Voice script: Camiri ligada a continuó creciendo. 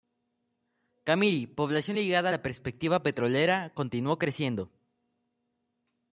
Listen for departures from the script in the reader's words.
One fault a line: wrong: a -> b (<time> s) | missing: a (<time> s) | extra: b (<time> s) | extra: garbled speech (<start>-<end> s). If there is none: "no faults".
extra: población (1.5 s)
extra: la perspectiva petrolera (2.3 s)